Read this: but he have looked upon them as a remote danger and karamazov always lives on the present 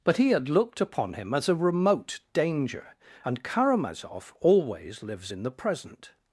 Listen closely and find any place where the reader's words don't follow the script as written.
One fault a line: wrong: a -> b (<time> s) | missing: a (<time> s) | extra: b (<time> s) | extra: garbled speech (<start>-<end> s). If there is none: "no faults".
wrong: have -> had (0.3 s)
wrong: them -> him (1.1 s)
wrong: on -> in (5.3 s)